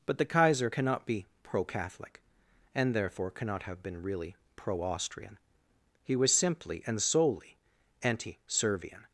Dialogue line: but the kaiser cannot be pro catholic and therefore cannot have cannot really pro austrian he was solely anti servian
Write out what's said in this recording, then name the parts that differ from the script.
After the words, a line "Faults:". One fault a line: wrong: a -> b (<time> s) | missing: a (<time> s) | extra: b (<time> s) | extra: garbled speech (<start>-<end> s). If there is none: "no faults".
but the kaiser cannot be pro catholic and therefore cannot have been really pro austrian he was simply and solely anti servian
Faults:
wrong: cannot -> been (3.8 s)
extra: simply and (6.3 s)